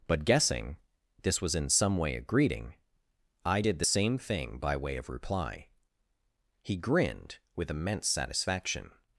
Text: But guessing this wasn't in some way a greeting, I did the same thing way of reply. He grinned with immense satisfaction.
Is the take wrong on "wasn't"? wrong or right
wrong